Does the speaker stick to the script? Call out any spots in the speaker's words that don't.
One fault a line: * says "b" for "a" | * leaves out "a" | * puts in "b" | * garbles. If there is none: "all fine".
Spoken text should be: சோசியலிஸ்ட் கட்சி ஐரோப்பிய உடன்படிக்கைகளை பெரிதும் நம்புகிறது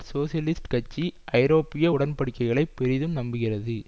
all fine